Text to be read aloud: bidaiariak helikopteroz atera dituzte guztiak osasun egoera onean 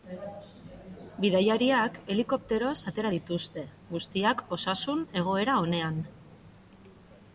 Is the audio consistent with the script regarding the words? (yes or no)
yes